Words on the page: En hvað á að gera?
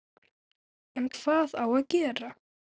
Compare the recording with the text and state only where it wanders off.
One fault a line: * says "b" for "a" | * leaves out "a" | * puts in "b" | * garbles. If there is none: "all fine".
all fine